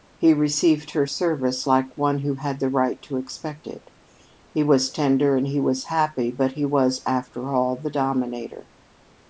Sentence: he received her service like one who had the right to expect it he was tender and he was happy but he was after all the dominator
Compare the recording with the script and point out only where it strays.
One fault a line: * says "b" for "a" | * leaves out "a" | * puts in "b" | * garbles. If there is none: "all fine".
all fine